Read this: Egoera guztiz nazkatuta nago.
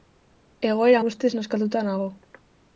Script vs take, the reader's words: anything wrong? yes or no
no